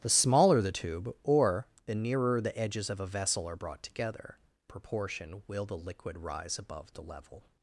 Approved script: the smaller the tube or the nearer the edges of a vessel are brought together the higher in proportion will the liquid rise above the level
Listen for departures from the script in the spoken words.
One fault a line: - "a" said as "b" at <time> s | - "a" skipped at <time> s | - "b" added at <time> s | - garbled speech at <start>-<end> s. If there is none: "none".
- "the higher in" skipped at 4.4 s